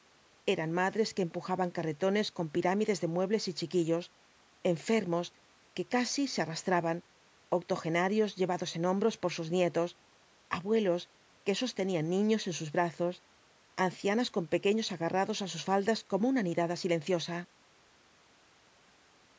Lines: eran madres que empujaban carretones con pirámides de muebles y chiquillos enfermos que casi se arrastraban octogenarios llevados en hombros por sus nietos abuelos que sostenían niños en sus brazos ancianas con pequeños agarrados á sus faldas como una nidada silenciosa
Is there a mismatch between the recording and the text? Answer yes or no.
no